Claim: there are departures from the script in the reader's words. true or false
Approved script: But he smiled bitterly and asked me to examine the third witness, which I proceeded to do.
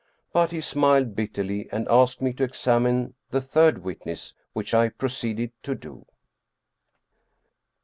false